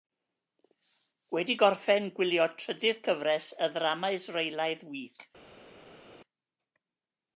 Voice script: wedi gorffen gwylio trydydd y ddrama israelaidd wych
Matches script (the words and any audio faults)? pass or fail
fail